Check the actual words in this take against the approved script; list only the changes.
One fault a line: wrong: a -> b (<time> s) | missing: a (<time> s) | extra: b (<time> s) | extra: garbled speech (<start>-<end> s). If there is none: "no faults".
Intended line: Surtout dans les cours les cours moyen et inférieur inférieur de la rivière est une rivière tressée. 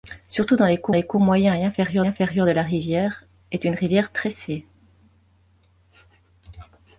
no faults